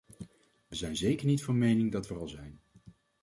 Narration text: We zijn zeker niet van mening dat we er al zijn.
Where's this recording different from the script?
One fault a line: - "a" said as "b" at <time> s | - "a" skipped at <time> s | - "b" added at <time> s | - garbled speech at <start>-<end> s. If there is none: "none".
none